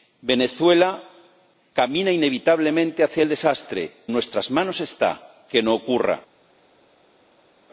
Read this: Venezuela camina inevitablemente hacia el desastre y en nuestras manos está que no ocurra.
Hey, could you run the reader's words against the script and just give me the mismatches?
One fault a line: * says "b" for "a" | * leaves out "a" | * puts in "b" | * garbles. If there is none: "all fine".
* leaves out "y en"